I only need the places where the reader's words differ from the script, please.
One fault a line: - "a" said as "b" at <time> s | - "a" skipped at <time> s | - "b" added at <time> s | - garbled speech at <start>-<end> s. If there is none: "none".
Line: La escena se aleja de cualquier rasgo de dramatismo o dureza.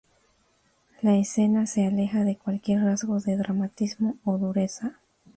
none